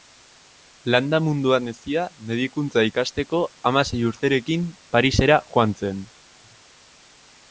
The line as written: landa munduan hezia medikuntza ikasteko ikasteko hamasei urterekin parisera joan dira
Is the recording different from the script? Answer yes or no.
yes